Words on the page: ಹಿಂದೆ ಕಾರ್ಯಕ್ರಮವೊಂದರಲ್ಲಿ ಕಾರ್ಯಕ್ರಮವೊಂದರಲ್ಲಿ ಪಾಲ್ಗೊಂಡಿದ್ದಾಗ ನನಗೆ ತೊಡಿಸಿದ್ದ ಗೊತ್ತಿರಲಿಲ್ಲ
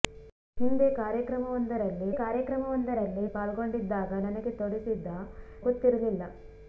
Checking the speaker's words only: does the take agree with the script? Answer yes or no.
yes